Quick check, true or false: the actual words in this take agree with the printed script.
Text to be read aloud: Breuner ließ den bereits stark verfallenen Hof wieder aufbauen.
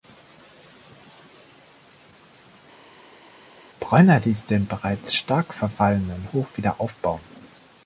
true